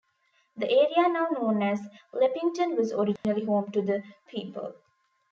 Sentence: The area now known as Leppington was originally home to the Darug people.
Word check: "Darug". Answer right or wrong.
wrong